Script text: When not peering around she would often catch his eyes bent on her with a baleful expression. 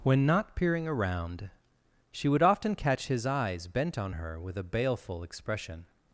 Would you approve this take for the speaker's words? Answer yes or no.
yes